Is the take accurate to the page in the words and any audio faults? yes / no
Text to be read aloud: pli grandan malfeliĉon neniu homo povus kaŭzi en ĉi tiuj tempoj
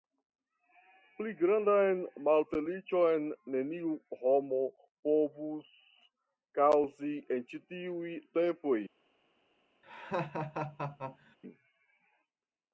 no